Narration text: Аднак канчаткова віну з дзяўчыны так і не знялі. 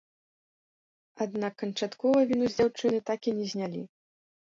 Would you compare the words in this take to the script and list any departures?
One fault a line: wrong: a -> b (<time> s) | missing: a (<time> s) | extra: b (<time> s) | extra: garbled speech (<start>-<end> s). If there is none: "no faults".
no faults